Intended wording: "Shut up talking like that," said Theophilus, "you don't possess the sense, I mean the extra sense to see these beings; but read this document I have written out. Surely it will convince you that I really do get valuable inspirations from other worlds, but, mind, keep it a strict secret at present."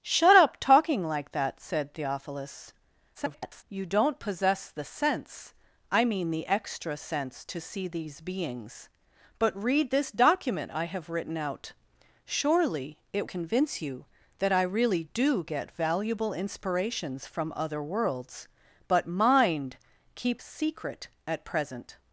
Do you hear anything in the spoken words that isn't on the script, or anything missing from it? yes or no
yes